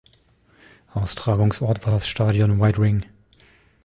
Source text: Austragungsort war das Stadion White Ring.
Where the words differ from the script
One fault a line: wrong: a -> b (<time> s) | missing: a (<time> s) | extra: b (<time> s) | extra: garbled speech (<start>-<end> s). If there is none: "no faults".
no faults